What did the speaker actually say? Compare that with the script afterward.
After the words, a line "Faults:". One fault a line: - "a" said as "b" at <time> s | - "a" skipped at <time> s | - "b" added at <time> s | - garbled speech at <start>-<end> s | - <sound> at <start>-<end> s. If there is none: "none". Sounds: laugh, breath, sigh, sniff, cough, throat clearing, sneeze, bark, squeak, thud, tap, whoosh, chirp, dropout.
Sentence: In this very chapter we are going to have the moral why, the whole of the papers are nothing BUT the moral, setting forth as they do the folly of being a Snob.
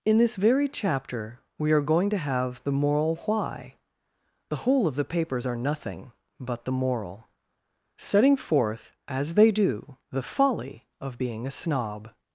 In this very chapter we are going to have the moral why, the whole of the papers are nothing BUT the moral, setting forth as they do the folly of being a Snob.
Faults:
none